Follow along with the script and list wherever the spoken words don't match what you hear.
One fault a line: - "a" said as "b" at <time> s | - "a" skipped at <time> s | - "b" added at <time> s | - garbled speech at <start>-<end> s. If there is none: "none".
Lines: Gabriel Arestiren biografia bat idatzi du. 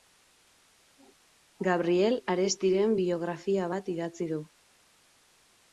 none